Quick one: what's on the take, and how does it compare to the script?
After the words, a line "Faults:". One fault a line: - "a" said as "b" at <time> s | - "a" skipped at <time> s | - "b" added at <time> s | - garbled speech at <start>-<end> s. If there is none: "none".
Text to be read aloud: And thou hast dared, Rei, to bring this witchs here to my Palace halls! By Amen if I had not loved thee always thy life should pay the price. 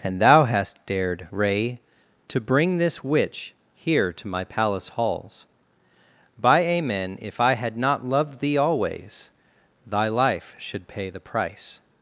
And thou hast dared, Rei, to bring this witch here to my Palace halls! By Amen if I had not loved thee always thy life should pay the price.
Faults:
- "witchs" said as "witch" at 3.0 s